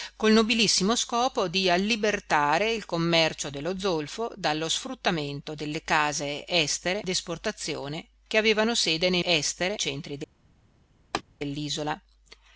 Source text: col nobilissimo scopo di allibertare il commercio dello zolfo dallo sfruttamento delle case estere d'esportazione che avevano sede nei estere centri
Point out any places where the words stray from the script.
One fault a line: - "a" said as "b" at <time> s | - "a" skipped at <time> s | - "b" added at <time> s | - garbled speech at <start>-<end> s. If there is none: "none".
none